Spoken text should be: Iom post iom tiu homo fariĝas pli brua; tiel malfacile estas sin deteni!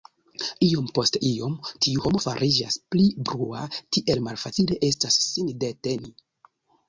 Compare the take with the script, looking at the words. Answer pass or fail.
pass